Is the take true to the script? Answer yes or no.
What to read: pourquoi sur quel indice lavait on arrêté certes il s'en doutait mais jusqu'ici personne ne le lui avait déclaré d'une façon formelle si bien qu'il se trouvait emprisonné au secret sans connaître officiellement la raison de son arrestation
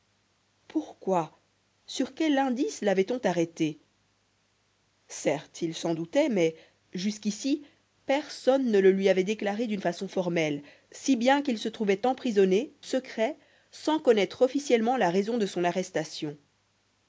no